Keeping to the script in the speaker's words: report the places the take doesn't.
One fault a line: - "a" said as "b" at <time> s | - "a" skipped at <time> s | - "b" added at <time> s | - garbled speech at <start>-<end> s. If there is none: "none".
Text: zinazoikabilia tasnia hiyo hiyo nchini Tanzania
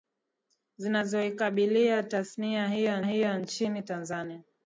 none